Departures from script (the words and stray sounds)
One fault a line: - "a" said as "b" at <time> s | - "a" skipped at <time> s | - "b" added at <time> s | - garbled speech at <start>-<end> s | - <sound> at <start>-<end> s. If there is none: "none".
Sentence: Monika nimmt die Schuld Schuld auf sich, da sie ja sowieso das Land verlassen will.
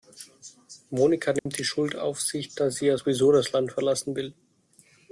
- dropout at 1.4-1.5 s
- "Schuld" skipped at 1.9 s